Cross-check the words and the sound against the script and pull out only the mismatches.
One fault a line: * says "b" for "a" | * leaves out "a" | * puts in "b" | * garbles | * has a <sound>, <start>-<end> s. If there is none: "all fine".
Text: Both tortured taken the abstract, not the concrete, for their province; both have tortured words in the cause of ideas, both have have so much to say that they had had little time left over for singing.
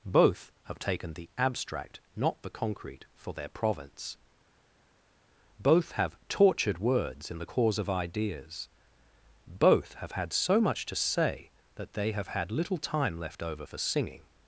* says "have" for "tortured"
* says "had" for "have"
* says "have" for "had"